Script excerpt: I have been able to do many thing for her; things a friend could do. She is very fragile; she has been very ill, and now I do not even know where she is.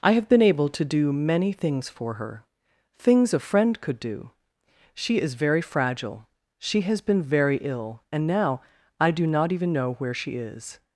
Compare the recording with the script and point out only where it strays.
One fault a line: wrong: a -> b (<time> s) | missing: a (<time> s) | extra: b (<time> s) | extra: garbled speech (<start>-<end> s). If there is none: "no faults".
wrong: thing -> things (1.5 s)